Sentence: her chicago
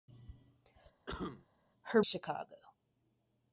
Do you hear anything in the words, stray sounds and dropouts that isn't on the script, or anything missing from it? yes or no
yes